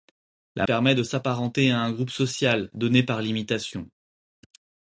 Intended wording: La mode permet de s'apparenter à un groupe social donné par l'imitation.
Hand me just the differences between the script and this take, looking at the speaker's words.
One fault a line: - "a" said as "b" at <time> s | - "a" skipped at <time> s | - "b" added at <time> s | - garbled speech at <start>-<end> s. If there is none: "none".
- "mode" skipped at 0.7 s